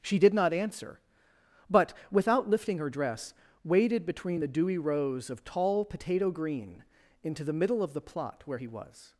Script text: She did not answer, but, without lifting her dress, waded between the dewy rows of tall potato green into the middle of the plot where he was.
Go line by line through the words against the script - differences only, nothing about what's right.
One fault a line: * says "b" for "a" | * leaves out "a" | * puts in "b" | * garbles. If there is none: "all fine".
all fine